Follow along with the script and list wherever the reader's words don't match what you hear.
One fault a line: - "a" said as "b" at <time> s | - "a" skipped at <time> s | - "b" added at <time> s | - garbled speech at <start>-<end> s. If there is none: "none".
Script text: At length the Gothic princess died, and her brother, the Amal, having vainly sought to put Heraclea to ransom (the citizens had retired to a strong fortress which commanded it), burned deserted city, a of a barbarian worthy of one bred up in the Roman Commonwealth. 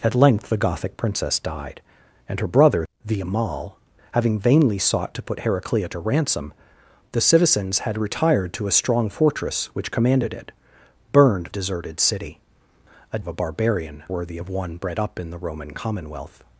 none